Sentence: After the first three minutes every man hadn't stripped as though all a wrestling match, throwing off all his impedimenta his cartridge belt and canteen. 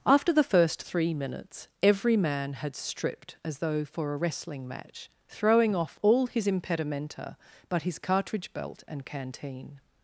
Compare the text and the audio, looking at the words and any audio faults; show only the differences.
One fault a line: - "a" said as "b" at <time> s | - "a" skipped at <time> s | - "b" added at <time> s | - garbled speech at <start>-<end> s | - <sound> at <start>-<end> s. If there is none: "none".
- "hadn't" said as "had" at 2.5 s
- "all" said as "for" at 3.9 s
- "but" added at 7.7 s